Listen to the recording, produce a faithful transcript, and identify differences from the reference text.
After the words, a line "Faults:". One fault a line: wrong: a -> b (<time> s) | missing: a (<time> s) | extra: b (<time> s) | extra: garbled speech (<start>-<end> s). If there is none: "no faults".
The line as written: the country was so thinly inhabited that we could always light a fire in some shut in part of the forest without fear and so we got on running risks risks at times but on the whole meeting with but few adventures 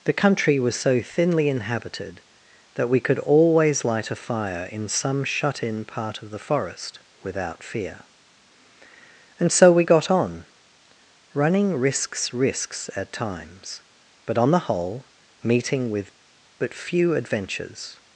the country was so thinly inhabited that we could always light a fire in some shut in part of the forest without fear and so we got on running risks risks at times but on the whole meeting with but few adventures
Faults:
no faults